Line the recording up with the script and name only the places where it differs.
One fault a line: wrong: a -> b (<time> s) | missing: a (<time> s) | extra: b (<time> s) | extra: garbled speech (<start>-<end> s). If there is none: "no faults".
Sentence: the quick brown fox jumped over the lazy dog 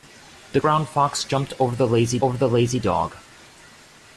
missing: quick (0.6 s)
extra: over the lazy (2.2 s)